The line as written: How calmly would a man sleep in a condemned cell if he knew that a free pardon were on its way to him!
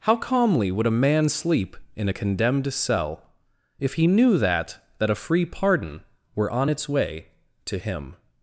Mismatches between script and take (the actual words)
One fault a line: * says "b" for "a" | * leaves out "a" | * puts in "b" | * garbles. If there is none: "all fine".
* puts in "that"